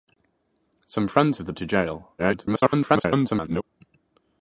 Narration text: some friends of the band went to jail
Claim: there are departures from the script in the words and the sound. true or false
true